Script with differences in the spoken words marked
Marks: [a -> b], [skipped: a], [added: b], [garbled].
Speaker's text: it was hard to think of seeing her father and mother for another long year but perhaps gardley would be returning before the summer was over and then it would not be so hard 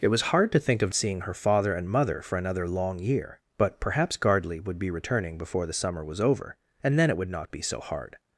it was hard to think of seeing her father and mother for another long year but perhaps gardley would be returning before the summer was over and then it would not be so hard